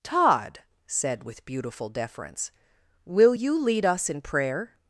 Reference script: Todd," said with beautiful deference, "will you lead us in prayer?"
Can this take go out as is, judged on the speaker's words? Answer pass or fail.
pass